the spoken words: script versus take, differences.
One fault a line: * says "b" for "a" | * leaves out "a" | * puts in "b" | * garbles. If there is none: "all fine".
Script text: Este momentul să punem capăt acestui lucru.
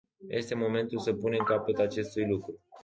all fine